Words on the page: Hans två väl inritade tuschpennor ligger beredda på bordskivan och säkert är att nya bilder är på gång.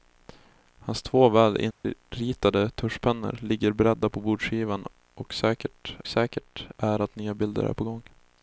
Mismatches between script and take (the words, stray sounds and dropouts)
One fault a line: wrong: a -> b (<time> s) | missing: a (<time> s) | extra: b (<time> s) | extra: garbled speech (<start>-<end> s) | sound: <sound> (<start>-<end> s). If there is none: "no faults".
sound: dropout (1.7-1.8 s)
extra: säkert (6.1 s)